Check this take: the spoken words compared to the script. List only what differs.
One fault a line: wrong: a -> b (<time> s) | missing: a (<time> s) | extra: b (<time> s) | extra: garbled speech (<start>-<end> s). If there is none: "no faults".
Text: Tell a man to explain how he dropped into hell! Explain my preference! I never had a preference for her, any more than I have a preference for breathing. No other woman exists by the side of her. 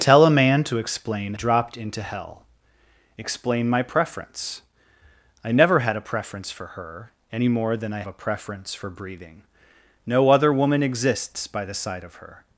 missing: how he (1.4 s)
missing: have (8.0 s)